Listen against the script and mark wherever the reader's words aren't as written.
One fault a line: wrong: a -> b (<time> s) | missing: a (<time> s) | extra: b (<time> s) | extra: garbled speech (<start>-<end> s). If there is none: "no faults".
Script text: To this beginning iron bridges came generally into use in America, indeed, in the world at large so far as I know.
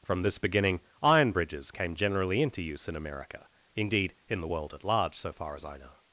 wrong: To -> From (0.0 s)